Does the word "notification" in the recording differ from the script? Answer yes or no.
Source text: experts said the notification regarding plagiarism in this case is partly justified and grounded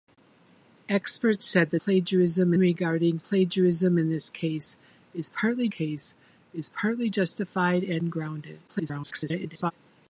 yes